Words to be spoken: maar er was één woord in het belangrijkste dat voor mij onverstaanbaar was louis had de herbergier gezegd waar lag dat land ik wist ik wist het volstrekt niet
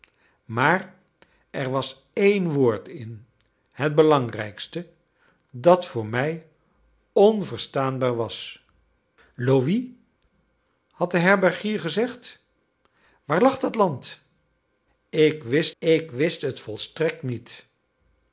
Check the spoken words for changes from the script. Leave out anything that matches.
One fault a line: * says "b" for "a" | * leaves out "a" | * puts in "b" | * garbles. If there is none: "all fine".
all fine